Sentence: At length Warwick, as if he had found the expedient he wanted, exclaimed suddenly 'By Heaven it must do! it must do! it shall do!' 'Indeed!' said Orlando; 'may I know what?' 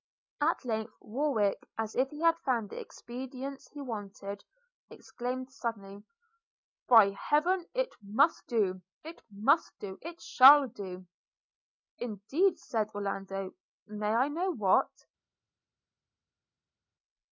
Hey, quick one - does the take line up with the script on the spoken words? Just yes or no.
yes